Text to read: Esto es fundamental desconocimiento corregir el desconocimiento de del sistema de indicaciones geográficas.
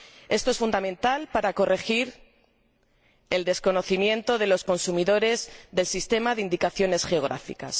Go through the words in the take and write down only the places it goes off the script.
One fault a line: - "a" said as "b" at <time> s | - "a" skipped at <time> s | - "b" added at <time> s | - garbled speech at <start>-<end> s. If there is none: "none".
- "desconocimiento" said as "para" at 1.3 s
- "los consumidores" added at 4.5 s